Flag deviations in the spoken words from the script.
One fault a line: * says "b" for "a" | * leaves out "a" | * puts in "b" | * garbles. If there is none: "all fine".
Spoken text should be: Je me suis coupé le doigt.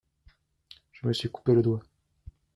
all fine